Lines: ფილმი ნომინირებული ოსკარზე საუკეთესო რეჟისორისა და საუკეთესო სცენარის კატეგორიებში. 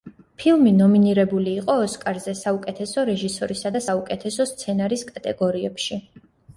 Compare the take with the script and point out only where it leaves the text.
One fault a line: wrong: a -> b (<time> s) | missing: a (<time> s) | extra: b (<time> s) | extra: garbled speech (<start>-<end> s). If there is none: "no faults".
extra: იყო (1.6 s)